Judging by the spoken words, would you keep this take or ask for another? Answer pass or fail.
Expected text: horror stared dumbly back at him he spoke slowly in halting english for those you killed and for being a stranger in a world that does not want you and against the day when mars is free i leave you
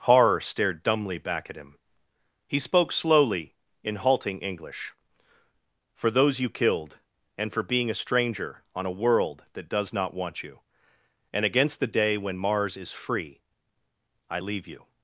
fail